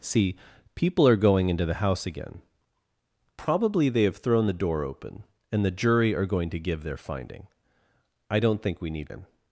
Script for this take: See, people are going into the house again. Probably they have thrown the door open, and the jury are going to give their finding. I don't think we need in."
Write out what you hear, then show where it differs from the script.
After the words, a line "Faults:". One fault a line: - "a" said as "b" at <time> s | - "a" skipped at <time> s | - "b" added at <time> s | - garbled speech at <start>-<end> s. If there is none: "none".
See, people are going into the house again. Probably they have thrown the door open, and the jury are going to give their finding. I don't think we need in."
Faults:
none